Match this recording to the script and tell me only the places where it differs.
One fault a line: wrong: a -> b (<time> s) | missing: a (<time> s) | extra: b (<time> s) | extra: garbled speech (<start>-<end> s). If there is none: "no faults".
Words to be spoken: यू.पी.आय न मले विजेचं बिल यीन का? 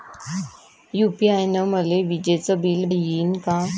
no faults